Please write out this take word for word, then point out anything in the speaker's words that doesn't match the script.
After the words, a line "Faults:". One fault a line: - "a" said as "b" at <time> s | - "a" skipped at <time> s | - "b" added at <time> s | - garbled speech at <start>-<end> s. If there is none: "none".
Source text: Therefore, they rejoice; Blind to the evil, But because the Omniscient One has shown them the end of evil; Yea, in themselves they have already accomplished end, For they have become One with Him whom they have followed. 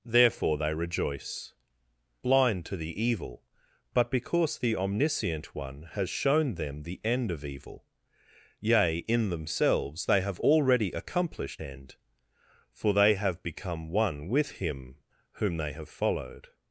Therefore, they rejoice; Blind to the evil, But because the Omniscient One has shown them the end of evil; Yea, in themselves they have already accomplished end, For they have become One with Him whom they have followed.
Faults:
none